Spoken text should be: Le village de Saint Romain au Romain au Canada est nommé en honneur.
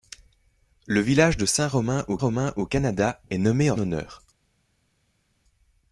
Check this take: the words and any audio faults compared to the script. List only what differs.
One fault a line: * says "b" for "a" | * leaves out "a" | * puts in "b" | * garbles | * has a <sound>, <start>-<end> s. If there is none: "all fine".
all fine